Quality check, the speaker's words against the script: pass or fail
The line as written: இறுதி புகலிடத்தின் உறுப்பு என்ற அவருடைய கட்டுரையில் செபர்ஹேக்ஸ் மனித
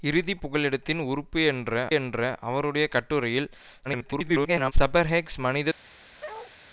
fail